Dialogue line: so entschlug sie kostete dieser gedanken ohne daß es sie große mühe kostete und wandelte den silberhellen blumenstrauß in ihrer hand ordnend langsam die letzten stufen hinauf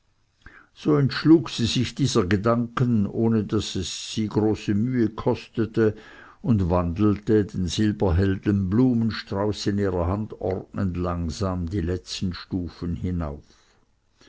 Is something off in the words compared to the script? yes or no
yes